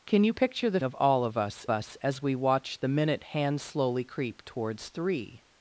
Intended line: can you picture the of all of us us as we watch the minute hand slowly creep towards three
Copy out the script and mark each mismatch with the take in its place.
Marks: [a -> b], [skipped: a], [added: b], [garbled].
can you picture the of all of us us as we watch the minute hand slowly creep towards three